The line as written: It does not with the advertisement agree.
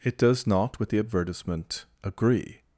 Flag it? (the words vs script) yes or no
no